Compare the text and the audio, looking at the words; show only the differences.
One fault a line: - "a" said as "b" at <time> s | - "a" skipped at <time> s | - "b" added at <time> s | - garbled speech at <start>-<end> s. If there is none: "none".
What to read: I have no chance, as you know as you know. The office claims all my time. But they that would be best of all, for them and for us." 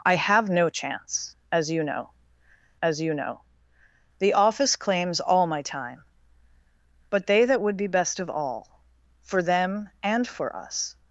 none